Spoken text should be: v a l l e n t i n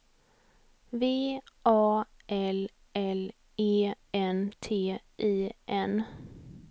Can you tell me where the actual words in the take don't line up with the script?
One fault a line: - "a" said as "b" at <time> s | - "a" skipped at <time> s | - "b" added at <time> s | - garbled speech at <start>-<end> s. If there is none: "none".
none